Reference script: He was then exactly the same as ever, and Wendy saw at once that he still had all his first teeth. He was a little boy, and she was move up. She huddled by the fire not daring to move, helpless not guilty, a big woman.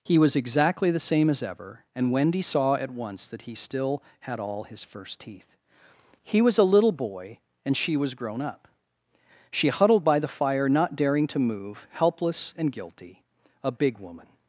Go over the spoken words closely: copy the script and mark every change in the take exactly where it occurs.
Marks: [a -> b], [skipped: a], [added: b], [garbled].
He was [skipped: then] exactly the same as ever, and Wendy saw at once that he still had all his first teeth. He was a little boy, and she was [move -> grown] up. She huddled by the fire not daring to move, helpless [not -> and] guilty, a big woman.